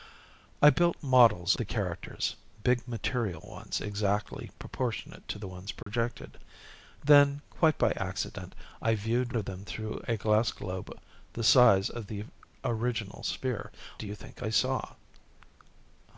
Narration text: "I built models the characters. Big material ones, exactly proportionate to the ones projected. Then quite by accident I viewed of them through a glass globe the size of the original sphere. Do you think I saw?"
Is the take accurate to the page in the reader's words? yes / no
yes